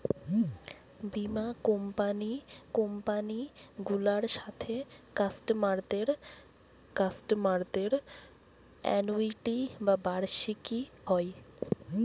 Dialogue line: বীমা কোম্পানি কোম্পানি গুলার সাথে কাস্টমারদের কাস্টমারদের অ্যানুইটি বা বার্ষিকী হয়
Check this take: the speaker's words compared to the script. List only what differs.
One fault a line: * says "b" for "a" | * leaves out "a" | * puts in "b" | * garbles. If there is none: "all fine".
all fine